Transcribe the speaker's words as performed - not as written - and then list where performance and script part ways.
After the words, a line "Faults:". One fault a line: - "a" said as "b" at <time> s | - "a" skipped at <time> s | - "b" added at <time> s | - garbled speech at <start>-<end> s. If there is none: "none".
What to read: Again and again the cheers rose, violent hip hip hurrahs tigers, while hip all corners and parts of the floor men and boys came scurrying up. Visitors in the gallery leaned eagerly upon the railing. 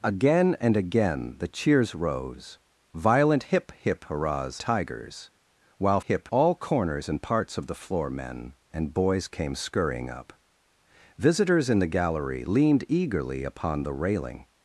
Again and again the cheers rose, violent hip hip hurrahs tigers, while hip all corners and parts of the floor men and boys came scurrying up. Visitors in the gallery leaned eagerly upon the railing.
Faults:
none